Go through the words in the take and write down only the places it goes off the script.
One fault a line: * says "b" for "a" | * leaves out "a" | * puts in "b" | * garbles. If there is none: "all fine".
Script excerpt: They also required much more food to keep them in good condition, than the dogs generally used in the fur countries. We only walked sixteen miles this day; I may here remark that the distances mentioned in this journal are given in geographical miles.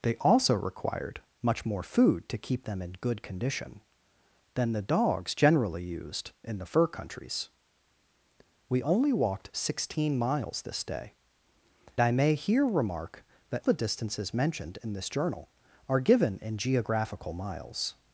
all fine